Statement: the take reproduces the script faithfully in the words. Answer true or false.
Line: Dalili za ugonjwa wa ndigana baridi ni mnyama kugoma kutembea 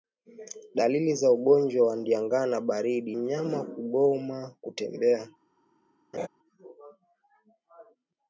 false